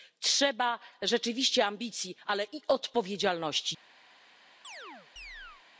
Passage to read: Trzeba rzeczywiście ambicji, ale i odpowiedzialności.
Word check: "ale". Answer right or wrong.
right